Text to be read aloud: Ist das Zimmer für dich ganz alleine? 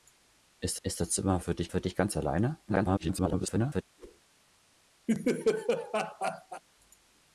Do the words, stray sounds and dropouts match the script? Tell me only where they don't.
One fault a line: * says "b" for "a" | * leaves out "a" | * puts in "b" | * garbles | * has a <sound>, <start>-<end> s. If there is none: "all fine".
* puts in "ist"
* puts in "für dich"
* garbles
* has a whoosh, 4.0-4.2 s
* has a laugh, 5.1-6.6 s